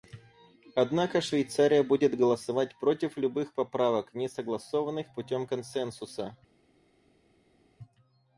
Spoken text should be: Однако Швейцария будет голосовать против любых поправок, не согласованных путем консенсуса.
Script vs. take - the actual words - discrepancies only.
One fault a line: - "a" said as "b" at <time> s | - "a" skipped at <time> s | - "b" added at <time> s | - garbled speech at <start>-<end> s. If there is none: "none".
none